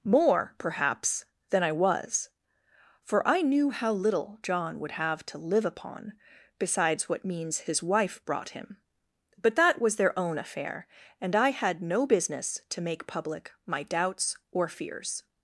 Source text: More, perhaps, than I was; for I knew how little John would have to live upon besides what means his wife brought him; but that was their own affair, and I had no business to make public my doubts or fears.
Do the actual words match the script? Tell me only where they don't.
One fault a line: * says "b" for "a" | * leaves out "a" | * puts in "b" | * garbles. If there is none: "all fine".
all fine